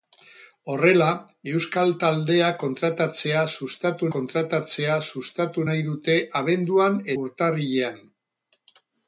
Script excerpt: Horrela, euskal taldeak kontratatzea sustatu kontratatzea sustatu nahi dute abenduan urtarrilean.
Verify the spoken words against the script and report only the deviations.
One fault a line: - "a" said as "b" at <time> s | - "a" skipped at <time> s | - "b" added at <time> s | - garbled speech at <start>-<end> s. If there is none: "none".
none